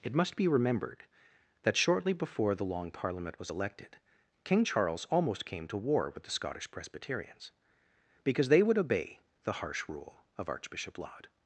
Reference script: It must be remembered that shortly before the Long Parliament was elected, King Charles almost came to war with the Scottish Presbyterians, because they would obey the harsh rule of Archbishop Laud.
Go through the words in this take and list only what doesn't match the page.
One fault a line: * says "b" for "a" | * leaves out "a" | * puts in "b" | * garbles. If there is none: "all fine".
all fine